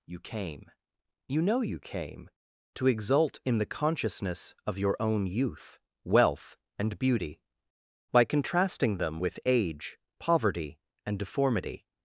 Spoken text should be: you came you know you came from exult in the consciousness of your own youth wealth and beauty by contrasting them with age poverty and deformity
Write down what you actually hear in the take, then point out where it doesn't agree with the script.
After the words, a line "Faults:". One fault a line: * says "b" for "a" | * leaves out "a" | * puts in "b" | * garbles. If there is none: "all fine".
you came you know you came to exult in the consciousness of your own youth wealth and beauty by contrasting them with age poverty and deformity
Faults:
* says "to" for "from"